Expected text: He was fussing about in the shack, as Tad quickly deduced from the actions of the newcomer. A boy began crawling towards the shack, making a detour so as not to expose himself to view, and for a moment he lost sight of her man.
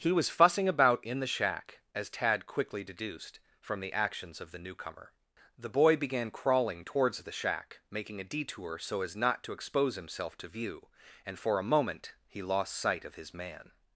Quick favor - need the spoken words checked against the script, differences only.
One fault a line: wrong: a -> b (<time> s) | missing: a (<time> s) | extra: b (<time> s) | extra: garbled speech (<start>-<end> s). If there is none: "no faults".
wrong: A -> The (5.6 s)
wrong: her -> his (13.1 s)